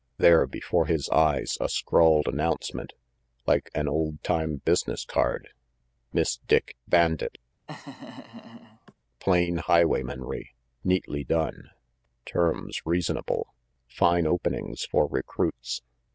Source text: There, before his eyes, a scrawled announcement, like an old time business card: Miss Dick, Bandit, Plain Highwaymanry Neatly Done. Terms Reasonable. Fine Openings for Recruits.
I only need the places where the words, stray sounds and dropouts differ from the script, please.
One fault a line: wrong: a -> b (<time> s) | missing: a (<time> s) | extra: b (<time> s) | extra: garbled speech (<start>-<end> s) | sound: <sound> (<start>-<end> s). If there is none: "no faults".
sound: laugh (7.7-8.9 s)